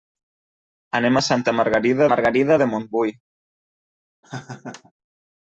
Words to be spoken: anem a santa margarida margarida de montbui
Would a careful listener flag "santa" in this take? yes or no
no